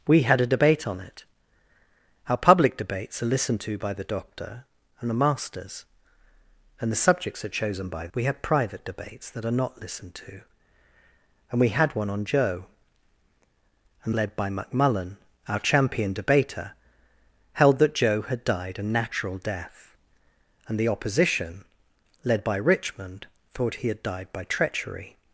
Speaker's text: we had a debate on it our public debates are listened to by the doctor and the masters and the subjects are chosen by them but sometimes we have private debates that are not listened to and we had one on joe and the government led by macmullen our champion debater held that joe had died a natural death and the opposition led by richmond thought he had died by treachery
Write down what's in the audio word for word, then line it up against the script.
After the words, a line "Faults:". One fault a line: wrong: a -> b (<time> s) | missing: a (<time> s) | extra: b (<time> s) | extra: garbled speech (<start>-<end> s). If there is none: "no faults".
we had a debate on it our public debates are listened to by the doctor and the masters and the subjects are chosen by we have private debates that are not listened to and we had one on joe and led by macmullen our champion debater held that joe had died a natural death and the opposition led by richmond thought he had died by treachery
Faults:
missing: them but sometimes (8.1 s)
missing: the government (14.1 s)